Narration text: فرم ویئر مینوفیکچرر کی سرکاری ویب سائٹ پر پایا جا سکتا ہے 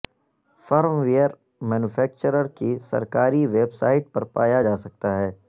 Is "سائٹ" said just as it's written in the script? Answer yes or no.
yes